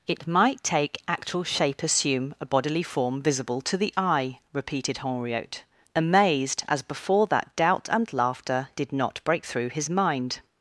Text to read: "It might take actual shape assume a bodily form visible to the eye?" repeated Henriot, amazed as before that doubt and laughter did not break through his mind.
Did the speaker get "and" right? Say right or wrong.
right